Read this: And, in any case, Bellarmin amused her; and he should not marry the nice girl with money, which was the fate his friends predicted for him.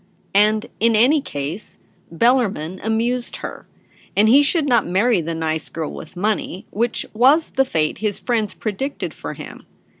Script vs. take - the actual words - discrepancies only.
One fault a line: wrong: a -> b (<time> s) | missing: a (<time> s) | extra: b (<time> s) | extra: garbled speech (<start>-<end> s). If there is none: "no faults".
no faults